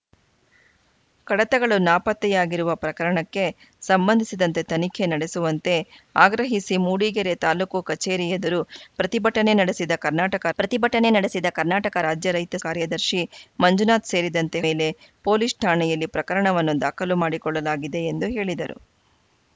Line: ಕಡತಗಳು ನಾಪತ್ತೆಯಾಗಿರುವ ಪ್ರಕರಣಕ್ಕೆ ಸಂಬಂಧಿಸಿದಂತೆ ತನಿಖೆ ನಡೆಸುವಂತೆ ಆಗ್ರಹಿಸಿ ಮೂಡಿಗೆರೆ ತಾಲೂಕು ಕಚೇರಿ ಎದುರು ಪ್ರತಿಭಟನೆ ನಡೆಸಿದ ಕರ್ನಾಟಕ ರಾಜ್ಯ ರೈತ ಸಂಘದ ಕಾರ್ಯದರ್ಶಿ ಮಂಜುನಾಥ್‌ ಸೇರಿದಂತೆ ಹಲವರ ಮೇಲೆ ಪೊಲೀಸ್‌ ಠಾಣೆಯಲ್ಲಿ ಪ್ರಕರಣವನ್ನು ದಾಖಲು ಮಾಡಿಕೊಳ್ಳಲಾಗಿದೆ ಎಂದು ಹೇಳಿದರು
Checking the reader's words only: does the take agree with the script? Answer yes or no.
no